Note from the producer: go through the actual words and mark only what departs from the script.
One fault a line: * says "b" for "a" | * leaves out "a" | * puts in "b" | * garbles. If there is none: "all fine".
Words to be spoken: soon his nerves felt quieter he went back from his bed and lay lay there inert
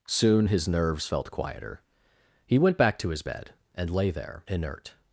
* says "to" for "from"
* leaves out "lay"